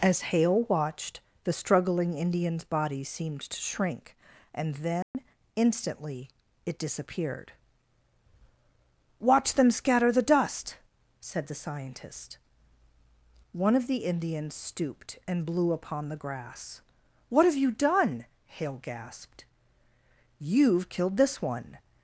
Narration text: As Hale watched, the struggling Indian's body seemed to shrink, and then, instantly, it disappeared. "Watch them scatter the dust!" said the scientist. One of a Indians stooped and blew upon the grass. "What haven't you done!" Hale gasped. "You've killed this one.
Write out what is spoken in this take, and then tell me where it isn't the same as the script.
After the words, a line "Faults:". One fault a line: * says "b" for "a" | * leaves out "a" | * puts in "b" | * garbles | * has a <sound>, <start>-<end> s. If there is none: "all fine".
As Hale watched, the struggling Indian's body seemed to shrink, and then, instantly, it disappeared. "Watch them scatter the dust!" said the scientist. One of the Indians stooped and blew upon the grass. "What have you done!" Hale gasped. "You've killed this one.
Faults:
* has a dropout, 5.0-5.1 s
* says "the" for "a"
* says "have" for "haven't"